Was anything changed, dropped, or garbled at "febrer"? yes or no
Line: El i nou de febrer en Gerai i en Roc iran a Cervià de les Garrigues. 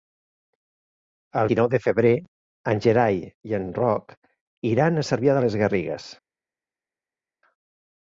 no